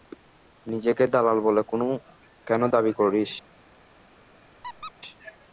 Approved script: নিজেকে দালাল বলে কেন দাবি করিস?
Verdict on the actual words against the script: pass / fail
pass